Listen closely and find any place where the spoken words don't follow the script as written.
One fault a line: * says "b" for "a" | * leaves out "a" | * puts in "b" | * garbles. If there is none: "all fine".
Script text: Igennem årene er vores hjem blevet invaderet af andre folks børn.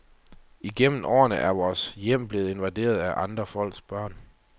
all fine